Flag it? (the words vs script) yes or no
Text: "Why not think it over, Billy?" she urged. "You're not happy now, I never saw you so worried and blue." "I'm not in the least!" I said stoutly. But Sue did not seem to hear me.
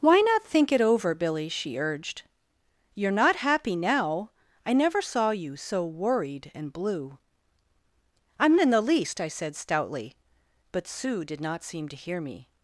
yes